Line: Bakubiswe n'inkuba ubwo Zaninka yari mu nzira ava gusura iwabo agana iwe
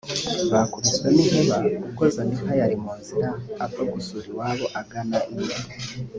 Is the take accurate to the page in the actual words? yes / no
yes